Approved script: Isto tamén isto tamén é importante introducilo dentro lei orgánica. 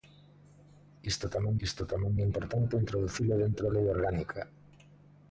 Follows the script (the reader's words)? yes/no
yes